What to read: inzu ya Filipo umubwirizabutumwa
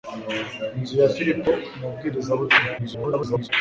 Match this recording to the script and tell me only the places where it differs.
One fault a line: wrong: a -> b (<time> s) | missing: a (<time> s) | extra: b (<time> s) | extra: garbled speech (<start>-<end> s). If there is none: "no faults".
extra: garbled speech (2.8-3.5 s)